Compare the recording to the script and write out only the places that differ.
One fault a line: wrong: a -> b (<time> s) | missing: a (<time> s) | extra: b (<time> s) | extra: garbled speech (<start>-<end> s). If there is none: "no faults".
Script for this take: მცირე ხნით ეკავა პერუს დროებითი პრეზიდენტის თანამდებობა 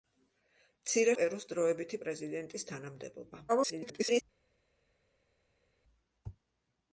missing: ხნით ეკავა (1.1 s)
extra: garbled speech (3.5-4.2 s)